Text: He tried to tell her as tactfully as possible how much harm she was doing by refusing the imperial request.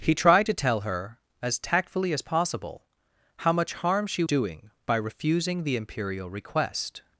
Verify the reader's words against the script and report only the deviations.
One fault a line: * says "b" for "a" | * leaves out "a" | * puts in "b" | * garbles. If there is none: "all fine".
* leaves out "was"